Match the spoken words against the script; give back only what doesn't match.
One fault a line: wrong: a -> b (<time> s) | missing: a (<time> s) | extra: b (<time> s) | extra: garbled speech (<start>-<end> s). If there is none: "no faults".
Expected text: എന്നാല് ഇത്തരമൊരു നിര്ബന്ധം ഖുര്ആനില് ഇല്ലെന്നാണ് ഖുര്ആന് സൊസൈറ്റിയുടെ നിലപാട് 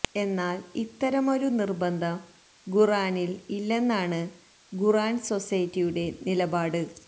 no faults